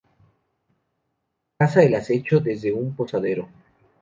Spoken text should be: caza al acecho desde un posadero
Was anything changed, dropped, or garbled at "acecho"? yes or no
no